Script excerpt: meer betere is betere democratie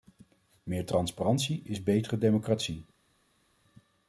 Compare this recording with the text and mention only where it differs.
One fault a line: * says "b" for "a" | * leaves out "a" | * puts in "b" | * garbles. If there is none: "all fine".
* says "transparantie" for "betere"